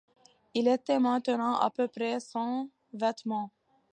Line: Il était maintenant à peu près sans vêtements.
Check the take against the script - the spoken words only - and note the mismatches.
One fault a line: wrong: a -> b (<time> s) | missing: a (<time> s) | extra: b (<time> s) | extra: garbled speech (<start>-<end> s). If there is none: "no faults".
no faults